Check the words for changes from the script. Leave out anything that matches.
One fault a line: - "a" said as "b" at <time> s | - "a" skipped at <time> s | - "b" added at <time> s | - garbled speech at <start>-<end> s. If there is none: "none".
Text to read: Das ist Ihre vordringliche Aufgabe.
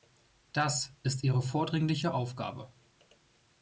none